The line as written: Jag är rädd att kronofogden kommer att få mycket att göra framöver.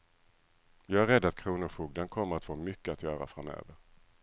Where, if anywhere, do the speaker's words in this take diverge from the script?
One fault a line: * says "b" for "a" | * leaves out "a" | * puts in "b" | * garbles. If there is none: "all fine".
all fine